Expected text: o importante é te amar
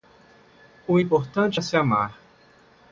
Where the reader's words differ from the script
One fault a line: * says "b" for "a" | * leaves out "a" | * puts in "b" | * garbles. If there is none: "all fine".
* says "se" for "te"